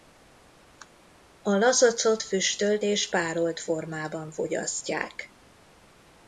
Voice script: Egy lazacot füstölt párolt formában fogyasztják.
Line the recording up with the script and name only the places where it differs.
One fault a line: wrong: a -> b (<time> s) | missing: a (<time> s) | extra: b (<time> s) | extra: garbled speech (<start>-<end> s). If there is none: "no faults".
wrong: Egy -> A (1.4 s)
extra: és (2.8 s)